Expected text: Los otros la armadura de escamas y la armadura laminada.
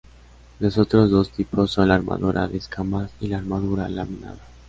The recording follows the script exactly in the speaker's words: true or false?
false